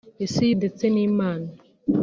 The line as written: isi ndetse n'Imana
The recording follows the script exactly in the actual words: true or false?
true